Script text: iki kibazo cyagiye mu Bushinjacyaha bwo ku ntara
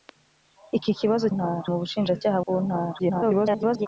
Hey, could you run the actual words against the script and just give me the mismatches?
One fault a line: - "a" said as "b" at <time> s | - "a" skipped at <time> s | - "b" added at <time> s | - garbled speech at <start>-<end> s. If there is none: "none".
- "cyagiye" said as "ntara" at 1.3 s
- "bwo" skipped at 2.4 s
- garbled speech at 3.0-3.9 s